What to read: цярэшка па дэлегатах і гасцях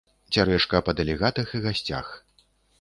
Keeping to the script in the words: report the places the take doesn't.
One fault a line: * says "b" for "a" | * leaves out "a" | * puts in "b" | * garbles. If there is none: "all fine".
all fine